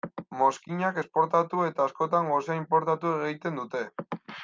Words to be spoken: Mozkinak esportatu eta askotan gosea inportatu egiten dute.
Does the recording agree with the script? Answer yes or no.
yes